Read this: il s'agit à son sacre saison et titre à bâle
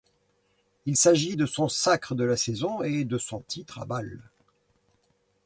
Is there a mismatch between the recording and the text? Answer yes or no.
yes